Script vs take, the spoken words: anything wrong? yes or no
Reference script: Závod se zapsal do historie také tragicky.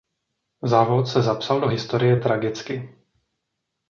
yes